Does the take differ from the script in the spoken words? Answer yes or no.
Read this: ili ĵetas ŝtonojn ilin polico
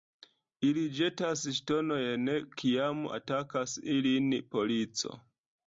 yes